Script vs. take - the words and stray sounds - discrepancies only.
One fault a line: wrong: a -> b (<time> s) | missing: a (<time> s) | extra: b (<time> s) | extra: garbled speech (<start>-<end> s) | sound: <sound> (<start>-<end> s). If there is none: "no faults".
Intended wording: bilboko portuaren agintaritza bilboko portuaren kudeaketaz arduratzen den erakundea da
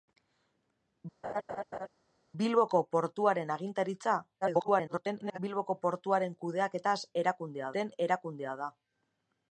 sound: laugh (1.2-1.9 s)
extra: garbled speech (4.4-5.4 s)
wrong: arduratzen -> erakundea (7.2 s)